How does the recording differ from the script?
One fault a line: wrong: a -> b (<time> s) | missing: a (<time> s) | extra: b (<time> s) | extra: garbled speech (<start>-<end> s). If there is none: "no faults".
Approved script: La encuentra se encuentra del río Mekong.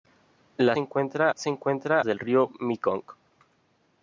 no faults